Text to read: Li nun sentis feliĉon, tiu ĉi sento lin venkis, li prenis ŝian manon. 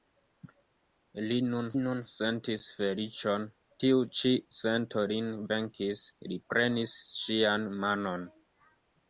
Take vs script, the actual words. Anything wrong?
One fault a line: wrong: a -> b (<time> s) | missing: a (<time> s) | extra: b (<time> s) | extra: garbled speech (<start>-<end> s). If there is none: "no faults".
extra: nun (1.8 s)